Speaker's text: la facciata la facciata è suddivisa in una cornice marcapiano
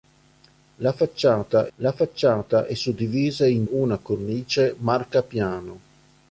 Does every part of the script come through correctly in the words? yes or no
yes